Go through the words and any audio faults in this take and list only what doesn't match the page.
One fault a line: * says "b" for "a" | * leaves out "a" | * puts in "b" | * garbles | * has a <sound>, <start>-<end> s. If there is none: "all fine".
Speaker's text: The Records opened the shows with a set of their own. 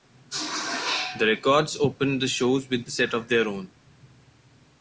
all fine